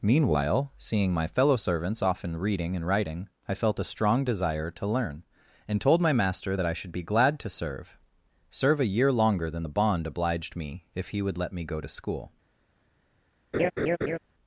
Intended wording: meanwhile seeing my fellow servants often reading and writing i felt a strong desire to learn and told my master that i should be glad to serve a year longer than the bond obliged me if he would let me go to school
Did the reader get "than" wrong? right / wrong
right